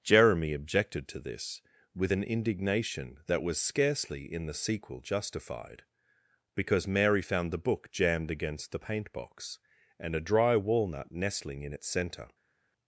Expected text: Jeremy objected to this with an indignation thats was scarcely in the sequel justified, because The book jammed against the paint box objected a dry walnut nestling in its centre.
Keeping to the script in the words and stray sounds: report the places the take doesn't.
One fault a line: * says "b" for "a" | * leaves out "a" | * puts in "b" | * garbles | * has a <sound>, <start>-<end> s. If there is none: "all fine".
* says "that" for "thats"
* puts in "Mary found"
* says "and" for "objected"